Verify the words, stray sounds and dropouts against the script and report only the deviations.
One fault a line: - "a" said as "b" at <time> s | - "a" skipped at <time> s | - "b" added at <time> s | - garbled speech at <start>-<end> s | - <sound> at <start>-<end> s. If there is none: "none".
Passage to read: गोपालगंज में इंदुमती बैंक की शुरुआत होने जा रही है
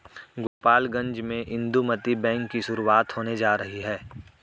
- dropout at 0.5-0.6 s